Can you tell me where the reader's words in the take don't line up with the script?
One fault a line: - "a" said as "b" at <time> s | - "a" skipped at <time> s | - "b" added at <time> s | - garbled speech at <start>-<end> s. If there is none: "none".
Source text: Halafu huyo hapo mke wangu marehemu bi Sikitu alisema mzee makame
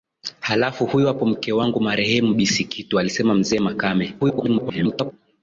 - garbled speech at 4.2-5.1 s